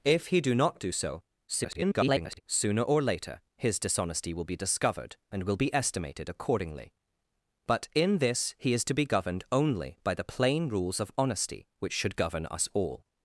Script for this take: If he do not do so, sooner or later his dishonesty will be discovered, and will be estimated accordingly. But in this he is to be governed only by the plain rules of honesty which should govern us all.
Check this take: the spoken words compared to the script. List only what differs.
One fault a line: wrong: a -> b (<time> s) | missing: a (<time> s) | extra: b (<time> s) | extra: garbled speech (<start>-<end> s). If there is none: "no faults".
extra: garbled speech (1.5-2.4 s)